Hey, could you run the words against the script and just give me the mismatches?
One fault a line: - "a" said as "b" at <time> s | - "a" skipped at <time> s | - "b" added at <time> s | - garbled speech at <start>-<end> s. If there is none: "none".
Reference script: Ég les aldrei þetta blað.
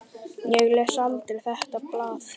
none